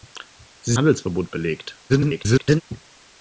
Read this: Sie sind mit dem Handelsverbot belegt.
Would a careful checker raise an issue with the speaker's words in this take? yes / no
yes